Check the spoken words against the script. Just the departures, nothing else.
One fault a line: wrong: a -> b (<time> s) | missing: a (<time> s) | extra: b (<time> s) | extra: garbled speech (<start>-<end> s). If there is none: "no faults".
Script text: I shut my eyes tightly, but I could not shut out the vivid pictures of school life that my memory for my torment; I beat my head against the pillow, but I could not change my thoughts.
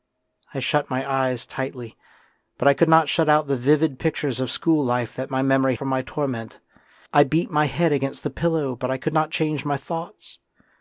no faults